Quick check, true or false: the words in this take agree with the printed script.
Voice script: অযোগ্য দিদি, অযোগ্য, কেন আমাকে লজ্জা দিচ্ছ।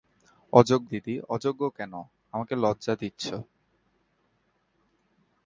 true